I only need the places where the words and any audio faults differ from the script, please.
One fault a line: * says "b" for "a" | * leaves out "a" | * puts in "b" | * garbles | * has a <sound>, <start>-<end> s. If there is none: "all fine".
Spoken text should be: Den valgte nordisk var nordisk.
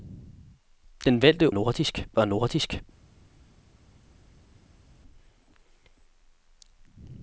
all fine